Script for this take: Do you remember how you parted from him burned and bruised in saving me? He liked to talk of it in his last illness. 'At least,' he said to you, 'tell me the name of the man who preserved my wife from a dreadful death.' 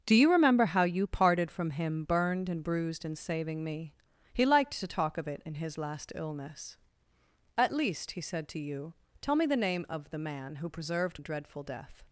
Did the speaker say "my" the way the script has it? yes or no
no